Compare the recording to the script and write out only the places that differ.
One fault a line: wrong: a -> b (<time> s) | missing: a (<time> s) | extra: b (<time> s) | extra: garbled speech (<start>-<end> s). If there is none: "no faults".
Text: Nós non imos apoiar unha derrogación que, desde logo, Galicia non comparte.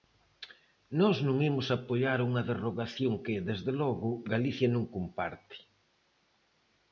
no faults